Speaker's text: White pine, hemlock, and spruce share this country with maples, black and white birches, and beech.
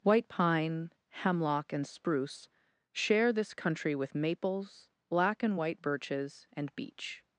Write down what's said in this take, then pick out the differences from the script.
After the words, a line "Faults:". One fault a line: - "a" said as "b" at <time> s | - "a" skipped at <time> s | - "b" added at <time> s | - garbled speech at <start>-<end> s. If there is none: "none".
White pine, hemlock, and spruce share this country with maples, black and white birches, and beech.
Faults:
none